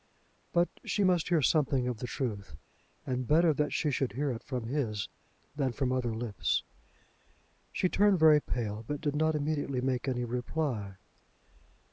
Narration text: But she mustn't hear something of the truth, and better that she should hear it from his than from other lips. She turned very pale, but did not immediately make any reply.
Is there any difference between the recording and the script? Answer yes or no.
yes